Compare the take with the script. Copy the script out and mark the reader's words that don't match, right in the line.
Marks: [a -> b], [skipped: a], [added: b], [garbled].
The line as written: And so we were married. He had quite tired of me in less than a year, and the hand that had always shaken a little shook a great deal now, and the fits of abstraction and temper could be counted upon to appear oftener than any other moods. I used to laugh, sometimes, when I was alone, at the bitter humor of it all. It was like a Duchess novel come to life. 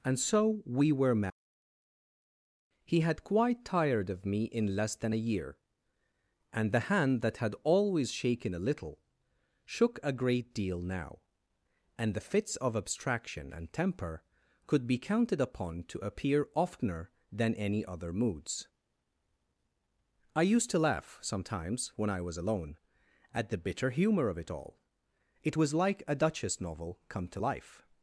And so we were married. He had quite tired of me in less than a year, and the hand that had always shaken a little shook a great deal now, and the fits of abstraction and temper could be counted upon to appear oftener than any other moods. I used to laugh, sometimes, when I was alone, at the bitter humor of it all. It was like a Duchess novel come to life.